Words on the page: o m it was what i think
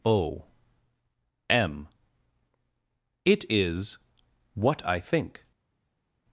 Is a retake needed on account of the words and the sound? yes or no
yes